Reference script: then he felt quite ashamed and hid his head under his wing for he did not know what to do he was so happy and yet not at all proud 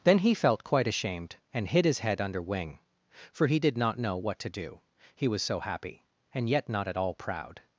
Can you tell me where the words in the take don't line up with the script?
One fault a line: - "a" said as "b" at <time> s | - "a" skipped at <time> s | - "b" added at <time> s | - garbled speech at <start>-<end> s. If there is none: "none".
- "his" skipped at 2.4 s